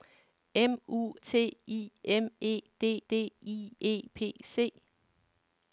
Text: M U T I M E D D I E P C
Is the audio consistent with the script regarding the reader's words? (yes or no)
yes